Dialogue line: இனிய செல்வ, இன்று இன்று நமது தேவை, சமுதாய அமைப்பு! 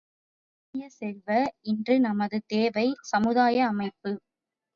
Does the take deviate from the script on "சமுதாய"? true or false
false